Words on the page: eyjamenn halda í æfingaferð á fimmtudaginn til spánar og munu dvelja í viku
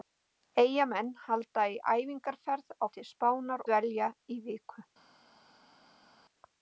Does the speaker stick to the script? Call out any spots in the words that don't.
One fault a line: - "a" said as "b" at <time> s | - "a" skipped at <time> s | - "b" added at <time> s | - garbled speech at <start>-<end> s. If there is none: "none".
- "fimmtudaginn" skipped at 2.9 s
- "og munu" skipped at 3.7 s